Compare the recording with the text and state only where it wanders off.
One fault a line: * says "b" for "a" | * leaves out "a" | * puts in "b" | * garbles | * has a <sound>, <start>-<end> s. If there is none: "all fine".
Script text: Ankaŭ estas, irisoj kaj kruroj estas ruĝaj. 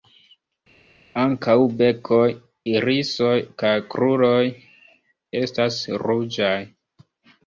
* says "bekoj" for "estas"